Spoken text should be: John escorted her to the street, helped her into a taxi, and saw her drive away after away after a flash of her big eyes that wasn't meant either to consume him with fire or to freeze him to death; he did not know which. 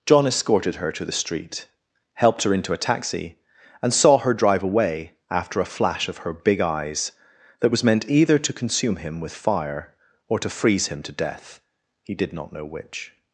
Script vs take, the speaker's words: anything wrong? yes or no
yes